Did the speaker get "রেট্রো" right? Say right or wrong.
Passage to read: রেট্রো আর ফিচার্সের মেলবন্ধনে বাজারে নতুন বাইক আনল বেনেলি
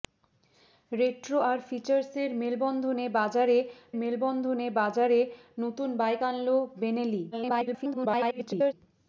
right